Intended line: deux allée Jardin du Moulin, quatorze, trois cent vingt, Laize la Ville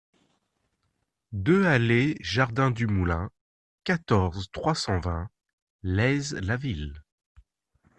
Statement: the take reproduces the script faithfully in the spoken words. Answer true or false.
true